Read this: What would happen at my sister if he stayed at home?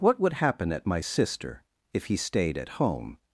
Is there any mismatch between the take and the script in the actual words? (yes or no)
no